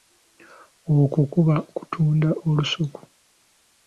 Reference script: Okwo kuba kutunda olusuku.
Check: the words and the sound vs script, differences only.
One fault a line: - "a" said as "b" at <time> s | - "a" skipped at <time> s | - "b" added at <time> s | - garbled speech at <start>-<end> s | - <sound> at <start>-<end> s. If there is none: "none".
none